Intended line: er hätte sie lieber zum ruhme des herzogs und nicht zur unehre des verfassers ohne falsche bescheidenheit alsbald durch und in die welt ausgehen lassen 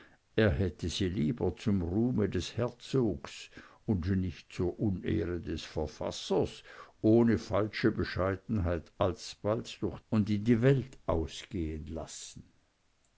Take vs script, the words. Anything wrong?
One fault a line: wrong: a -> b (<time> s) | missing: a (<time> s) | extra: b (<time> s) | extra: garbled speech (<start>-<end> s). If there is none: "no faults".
no faults